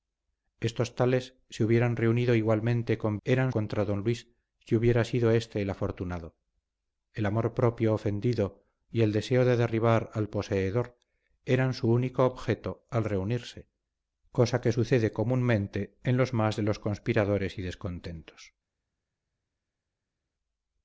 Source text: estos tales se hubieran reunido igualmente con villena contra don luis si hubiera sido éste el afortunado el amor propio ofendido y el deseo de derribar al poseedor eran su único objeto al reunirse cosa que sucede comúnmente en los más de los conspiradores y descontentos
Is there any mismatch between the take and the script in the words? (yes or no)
yes